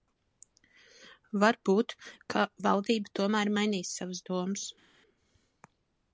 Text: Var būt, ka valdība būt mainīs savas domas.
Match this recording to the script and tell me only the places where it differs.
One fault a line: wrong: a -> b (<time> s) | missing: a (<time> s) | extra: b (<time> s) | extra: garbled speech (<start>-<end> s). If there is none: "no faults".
wrong: būt -> tomēr (3.2 s)